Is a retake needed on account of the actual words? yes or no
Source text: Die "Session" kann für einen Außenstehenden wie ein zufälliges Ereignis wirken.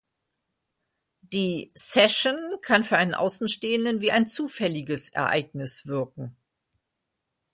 no